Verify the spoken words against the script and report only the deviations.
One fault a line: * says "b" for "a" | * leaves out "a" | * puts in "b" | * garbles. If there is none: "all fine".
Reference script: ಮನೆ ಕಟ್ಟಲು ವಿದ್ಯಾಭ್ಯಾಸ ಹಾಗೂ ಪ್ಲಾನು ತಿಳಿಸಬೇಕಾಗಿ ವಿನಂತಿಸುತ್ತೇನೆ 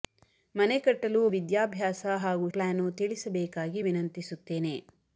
all fine